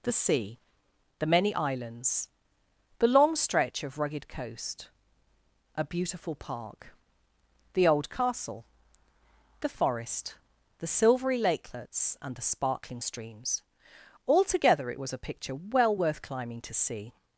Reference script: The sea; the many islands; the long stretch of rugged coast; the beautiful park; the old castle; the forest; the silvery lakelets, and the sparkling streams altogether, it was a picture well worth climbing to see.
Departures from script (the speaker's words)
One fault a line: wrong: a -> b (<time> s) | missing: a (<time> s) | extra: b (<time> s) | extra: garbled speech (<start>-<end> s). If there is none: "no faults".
wrong: the -> a (5.8 s)